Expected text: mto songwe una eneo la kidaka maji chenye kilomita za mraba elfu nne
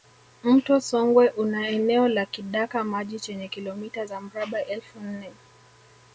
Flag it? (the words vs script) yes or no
no